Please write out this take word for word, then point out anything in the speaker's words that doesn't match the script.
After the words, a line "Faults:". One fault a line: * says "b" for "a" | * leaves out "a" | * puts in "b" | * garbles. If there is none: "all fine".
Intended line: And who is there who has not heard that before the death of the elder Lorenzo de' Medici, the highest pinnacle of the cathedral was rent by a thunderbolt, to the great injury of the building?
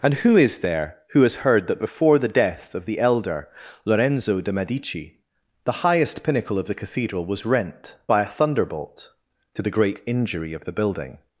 And who is there who has heard that before the death of the elder Lorenzo de' Medici, the highest pinnacle of the cathedral was rent by a thunderbolt, to the great injury of the building?
Faults:
* leaves out "not"